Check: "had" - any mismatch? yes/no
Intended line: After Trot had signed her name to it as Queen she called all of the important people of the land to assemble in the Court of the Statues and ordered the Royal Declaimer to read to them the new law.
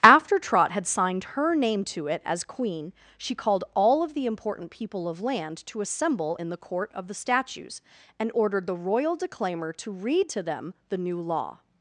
no